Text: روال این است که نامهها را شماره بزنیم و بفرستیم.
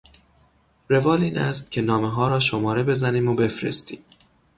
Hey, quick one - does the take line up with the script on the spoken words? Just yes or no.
yes